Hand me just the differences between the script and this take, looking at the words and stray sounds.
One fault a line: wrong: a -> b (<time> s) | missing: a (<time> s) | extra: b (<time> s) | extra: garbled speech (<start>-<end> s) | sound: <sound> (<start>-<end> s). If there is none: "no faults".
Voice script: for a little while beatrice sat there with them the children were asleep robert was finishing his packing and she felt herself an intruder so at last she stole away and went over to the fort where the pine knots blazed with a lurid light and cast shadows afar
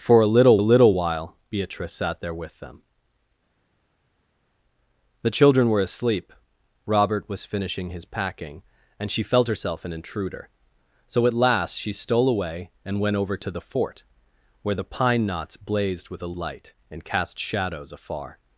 extra: a little (0.6 s)
missing: lurid (16.3 s)